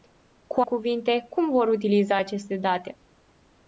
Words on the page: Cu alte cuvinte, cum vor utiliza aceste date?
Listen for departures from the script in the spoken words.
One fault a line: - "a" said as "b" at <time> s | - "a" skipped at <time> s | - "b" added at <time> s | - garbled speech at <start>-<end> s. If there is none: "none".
- "alte" skipped at 0.6 s